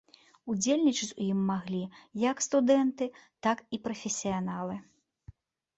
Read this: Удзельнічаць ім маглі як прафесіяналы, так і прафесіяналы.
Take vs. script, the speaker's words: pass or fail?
fail